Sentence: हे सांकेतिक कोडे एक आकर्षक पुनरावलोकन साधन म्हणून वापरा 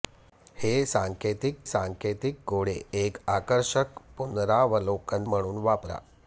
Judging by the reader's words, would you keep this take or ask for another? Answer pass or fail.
fail